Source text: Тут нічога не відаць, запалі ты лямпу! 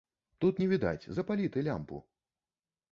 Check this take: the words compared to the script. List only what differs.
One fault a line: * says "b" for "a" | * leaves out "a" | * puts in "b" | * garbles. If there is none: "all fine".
* leaves out "нічога"